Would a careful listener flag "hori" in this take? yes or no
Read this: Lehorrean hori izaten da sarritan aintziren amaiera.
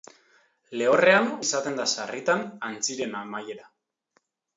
yes